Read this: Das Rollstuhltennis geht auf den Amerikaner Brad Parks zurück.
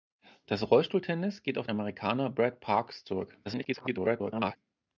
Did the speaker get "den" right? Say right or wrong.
wrong